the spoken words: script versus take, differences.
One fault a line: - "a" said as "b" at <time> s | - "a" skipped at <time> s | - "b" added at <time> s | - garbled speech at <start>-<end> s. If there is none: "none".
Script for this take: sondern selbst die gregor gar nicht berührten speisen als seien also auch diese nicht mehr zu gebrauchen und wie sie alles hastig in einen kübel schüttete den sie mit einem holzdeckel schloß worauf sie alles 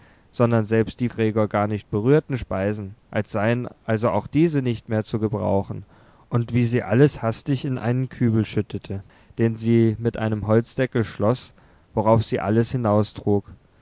none